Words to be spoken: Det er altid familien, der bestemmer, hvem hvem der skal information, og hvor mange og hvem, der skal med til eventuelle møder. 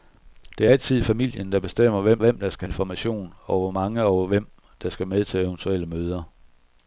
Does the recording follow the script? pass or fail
pass